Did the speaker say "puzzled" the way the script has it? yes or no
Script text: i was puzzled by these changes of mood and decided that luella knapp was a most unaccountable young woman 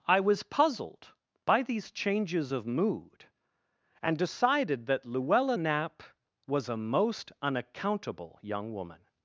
yes